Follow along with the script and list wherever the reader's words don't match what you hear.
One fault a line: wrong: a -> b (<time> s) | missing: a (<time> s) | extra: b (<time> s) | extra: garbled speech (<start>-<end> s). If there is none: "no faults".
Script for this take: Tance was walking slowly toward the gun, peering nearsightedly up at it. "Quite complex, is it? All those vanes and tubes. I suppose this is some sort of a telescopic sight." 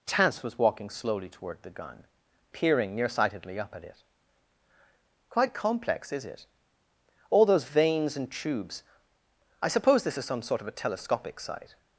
no faults